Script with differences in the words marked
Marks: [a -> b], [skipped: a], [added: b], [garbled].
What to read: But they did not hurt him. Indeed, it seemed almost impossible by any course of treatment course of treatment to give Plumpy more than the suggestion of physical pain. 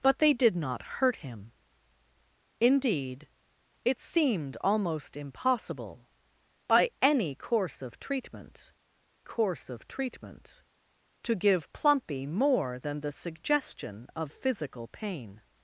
But they did not hurt him. Indeed, it seemed almost impossible by any course of treatment course of treatment to give Plumpy more than the suggestion of physical pain.